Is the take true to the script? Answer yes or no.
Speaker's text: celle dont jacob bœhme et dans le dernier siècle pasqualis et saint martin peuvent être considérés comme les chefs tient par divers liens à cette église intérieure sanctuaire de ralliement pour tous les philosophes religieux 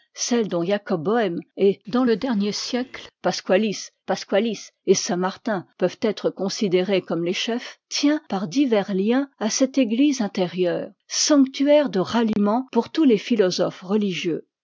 no